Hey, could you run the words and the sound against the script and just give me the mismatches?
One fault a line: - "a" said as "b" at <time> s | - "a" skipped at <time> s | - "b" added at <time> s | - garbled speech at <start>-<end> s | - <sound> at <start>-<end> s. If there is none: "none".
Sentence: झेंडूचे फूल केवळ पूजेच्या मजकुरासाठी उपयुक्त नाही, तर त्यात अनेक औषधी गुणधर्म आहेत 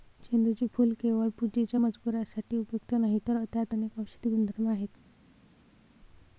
none